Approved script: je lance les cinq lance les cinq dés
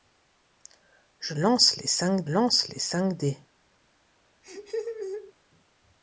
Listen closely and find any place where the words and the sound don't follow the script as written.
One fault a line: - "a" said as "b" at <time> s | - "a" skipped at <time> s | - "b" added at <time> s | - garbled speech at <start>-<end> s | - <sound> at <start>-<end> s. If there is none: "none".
- laugh at 4.4-5.3 s